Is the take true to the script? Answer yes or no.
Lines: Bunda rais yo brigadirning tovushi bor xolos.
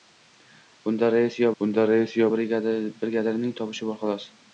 no